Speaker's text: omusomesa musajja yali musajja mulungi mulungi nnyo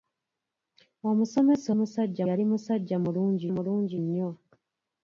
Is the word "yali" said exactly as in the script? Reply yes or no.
yes